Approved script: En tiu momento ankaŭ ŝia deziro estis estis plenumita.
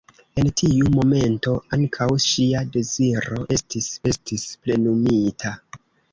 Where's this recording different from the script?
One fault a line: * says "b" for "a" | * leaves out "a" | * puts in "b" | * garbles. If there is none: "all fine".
all fine